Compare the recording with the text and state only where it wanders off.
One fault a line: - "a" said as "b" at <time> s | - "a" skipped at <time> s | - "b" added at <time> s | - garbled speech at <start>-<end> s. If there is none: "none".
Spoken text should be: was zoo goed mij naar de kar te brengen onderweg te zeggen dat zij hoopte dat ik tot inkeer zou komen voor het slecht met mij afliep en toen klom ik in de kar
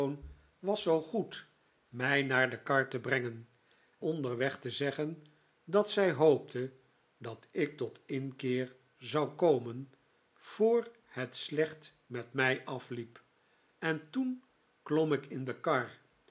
none